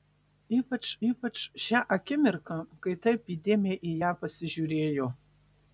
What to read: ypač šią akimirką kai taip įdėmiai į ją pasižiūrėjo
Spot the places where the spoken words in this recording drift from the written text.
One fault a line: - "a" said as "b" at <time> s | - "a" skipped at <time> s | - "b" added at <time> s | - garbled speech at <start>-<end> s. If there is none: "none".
- "ypač" added at 1.1 s